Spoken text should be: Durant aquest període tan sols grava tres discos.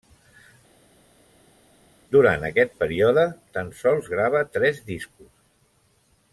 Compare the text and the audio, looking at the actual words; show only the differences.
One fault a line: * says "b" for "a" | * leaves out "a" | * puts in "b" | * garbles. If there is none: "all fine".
all fine